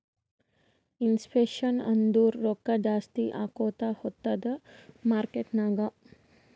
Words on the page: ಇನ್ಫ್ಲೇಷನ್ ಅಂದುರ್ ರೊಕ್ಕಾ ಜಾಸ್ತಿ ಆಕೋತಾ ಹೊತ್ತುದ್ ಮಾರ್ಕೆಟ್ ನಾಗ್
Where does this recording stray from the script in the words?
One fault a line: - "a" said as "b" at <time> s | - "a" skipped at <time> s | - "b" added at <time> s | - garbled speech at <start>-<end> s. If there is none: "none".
none